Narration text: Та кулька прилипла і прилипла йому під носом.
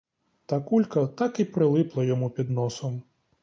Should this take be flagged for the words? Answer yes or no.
yes